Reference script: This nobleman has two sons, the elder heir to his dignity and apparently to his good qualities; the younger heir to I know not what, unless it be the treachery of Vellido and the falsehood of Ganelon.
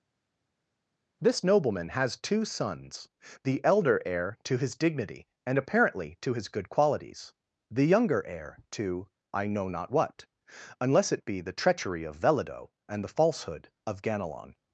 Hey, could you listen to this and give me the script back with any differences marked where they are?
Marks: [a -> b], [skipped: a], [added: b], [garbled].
This nobleman has two sons, the elder heir to his dignity and apparently to his good qualities; the younger heir to I know not what, unless it be the treachery of Vellido and the falsehood of Ganelon.